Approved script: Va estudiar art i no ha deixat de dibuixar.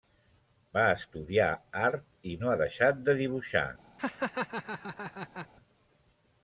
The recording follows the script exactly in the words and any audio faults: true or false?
false